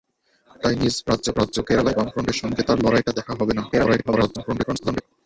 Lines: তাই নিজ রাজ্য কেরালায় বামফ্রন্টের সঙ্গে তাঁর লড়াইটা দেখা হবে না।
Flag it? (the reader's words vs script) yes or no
yes